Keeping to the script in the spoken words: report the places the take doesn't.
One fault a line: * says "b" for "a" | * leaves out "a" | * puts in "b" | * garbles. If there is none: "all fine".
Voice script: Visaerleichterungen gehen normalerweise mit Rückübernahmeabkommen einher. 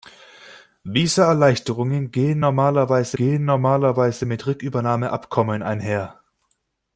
* puts in "gehen normalerweise"